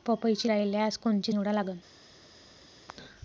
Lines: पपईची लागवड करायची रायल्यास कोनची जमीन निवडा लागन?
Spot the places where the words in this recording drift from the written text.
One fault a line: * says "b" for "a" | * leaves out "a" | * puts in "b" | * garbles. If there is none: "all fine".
* leaves out "लागवड करायची"
* leaves out "जमीन"